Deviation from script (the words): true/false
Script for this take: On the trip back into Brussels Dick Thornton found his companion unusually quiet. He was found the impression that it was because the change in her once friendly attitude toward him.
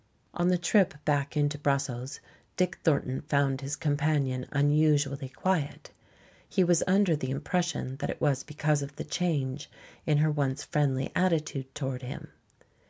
true